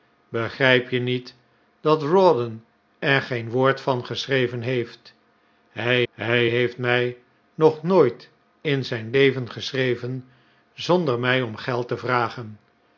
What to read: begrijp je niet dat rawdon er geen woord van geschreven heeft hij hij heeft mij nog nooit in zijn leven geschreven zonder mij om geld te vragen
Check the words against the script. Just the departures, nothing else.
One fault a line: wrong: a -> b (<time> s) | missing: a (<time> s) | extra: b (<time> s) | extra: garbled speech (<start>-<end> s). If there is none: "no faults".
no faults